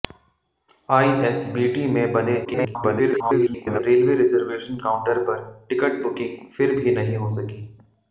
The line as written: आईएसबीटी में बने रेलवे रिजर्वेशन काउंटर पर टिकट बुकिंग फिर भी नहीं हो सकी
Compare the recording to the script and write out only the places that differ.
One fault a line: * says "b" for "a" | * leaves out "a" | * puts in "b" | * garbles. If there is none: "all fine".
* garbles